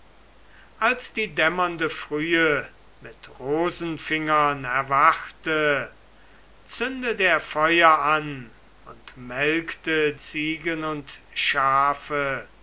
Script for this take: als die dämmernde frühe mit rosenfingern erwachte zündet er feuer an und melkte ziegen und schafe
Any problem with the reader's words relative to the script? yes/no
no